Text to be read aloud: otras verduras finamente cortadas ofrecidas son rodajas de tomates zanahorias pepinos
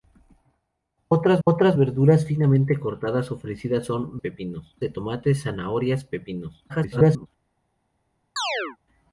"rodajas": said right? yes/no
no